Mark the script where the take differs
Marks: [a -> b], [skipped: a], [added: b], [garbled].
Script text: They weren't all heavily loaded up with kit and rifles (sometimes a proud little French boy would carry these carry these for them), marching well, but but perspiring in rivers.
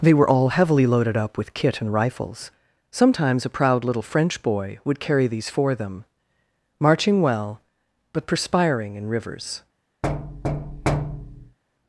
They [weren't -> were] all heavily loaded up with kit and rifles (sometimes a proud little French boy would carry these [skipped: carry these] for them), marching well, but [skipped: but] perspiring in rivers.